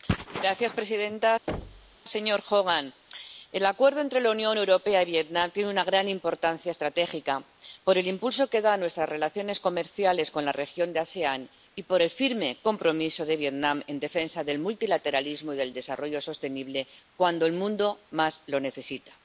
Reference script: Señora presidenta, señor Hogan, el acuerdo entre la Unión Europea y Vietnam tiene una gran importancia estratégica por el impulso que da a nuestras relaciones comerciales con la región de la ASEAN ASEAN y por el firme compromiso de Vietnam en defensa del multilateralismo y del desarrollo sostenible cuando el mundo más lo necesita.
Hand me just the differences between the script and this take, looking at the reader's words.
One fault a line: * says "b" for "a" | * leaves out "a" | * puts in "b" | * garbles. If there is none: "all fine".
* leaves out "ASEAN"